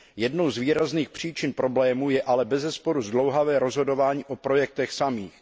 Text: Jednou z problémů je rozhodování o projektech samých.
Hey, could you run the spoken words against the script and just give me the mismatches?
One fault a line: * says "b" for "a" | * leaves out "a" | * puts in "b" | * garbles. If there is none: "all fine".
* puts in "výrazných příčin"
* puts in "ale bezesporu zdlouhavé"